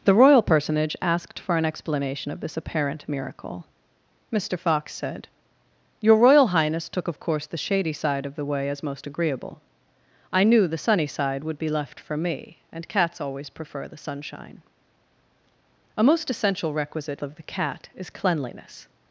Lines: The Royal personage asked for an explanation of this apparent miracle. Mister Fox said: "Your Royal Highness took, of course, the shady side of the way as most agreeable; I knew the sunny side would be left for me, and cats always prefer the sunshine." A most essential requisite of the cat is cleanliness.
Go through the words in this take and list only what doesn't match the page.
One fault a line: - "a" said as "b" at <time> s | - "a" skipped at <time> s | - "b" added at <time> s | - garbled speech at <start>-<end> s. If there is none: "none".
none